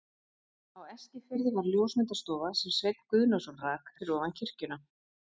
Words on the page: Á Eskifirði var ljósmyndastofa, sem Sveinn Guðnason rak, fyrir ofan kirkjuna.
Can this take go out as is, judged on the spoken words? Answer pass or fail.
pass